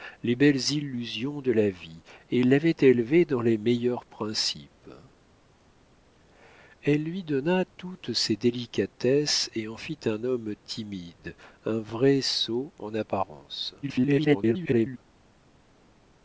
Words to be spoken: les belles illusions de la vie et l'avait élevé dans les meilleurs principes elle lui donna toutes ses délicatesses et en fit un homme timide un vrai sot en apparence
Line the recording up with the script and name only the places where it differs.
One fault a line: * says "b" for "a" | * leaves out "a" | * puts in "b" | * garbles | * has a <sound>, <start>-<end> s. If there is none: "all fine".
* garbles